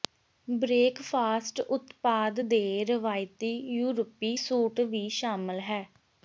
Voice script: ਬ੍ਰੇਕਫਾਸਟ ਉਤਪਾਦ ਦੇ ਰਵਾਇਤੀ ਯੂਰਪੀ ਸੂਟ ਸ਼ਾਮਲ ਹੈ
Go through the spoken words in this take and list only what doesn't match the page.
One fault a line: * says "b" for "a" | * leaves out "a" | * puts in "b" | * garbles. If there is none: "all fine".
* puts in "ਵੀ"